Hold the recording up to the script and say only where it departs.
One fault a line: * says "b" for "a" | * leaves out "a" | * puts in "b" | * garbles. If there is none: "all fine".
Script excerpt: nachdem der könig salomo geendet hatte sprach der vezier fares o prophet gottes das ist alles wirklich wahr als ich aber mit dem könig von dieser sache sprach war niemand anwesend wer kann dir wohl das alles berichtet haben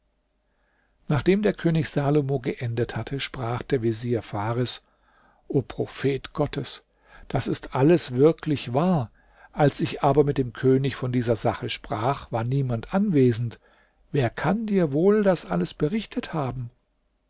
all fine